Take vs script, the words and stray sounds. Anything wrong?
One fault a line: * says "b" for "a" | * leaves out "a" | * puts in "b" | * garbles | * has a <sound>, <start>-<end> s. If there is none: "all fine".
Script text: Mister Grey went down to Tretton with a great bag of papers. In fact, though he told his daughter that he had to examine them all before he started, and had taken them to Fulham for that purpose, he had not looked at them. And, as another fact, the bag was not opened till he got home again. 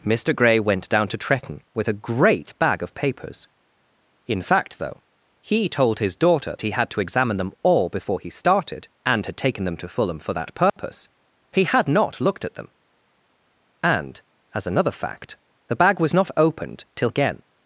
* leaves out "that"
* has a dropout, 10.7-10.8 s
* leaves out "he got home"